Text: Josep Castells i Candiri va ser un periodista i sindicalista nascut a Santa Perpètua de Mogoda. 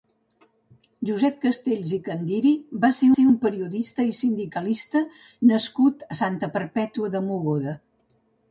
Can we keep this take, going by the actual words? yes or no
no